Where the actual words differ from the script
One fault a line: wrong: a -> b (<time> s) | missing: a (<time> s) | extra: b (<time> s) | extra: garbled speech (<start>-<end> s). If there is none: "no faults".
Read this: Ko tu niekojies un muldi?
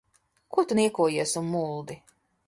no faults